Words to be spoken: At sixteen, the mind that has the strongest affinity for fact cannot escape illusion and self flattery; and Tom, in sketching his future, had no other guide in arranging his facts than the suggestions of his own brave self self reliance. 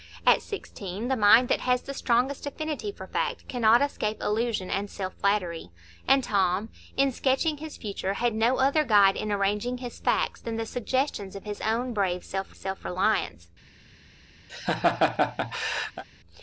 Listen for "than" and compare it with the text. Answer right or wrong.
right